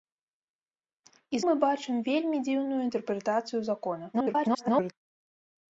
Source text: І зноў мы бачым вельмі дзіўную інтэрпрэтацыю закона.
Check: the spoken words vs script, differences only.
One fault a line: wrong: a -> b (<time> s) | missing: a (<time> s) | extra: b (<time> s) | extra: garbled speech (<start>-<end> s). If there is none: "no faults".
missing: зноў (1.4 s)
extra: garbled speech (4.1-4.9 s)